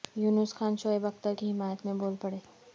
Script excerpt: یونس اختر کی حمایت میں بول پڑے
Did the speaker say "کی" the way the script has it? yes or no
yes